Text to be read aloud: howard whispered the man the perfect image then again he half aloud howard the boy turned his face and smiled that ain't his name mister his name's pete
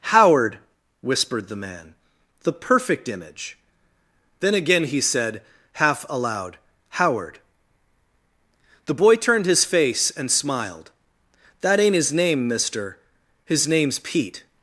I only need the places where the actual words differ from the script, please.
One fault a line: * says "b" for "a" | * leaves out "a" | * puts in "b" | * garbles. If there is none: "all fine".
* puts in "said"